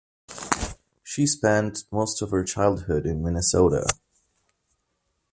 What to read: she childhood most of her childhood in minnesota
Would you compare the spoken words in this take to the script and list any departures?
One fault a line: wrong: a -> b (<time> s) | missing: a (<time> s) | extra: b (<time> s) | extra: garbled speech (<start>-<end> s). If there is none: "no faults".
wrong: childhood -> spent (1.3 s)